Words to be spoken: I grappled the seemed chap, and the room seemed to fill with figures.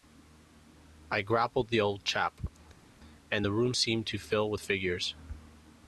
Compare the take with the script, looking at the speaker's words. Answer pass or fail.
fail